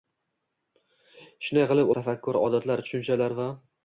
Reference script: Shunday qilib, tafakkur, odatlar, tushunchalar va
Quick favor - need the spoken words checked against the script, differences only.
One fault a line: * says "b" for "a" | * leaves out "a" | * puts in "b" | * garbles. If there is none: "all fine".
all fine